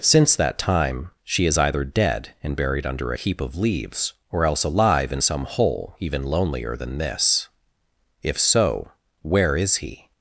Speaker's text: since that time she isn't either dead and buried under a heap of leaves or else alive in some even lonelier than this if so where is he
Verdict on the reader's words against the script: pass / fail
fail